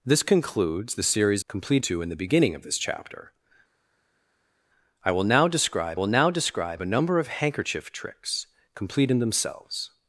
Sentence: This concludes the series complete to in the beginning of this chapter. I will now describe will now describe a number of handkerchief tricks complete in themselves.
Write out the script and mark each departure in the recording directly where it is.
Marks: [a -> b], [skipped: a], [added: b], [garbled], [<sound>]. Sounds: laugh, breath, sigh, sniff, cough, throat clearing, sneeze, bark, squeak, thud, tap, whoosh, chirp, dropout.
This concludes the series complete to in the beginning of this chapter. I will now describe will now describe a number of handkerchief tricks complete in themselves.